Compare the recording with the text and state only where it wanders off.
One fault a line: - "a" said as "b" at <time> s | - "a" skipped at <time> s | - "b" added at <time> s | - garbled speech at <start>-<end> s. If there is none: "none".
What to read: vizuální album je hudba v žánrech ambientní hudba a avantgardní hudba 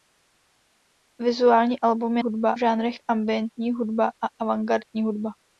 none